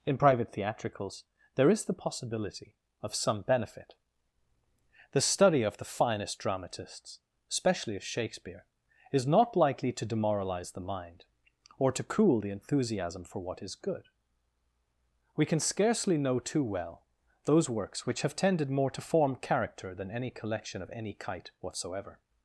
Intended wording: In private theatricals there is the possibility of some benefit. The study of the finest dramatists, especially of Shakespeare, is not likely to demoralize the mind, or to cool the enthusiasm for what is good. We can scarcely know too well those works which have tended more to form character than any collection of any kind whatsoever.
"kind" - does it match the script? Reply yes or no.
no